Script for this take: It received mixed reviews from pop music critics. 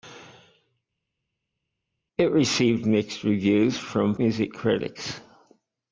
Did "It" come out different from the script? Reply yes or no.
no